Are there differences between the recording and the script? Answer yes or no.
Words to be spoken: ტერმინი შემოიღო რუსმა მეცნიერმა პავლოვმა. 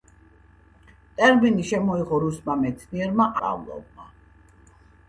no